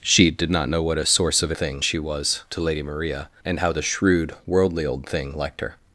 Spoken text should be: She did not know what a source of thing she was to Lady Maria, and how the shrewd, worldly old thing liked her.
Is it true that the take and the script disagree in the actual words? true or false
false